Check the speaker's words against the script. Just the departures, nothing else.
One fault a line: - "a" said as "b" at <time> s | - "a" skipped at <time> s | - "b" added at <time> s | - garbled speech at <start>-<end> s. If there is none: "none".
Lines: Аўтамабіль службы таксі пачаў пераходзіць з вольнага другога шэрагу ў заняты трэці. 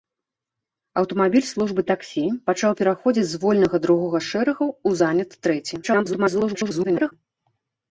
- garbled speech at 5.8-7.1 s